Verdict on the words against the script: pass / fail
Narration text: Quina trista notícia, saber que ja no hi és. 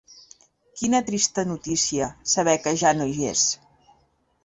pass